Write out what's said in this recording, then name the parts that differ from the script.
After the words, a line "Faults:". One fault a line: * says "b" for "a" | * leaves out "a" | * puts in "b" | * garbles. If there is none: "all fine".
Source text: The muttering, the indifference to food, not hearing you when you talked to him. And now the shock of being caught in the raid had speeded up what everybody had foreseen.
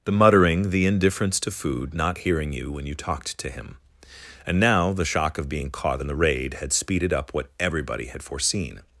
The muttering, the indifference to food, not hearing you when you talked to him. And now the shock of being caught in the raid had speeded up what everybody had foreseen.
Faults:
all fine